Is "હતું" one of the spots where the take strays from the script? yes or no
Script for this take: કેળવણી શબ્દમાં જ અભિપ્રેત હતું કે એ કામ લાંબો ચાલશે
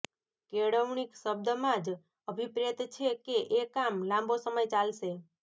yes